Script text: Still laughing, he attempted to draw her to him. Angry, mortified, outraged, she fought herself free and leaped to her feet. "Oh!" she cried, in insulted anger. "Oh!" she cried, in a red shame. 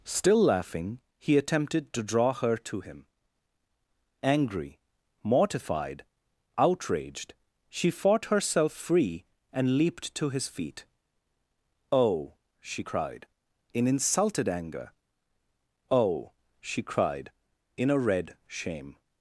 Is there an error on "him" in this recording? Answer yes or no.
no